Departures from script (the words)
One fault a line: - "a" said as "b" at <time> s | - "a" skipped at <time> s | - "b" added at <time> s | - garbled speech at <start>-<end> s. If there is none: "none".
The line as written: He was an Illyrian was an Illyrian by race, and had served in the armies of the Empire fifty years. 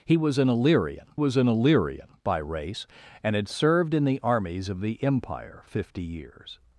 none